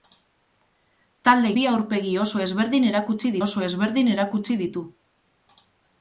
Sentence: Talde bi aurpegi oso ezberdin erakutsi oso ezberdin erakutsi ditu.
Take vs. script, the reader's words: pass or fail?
pass